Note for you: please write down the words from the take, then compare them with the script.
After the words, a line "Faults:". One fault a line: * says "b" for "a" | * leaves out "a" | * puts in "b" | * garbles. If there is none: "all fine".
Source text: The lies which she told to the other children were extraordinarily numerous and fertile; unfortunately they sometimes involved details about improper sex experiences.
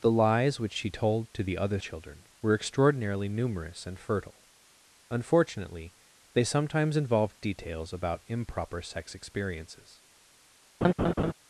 The lies which she told to the other children were extraordinarily numerous and fertile; unfortunately they sometimes involved details about improper sex experiences.
Faults:
all fine